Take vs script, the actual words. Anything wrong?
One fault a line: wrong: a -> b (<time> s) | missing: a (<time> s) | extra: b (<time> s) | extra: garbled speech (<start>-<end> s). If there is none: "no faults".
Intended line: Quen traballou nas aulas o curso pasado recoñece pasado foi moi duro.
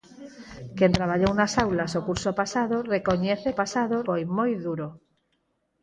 no faults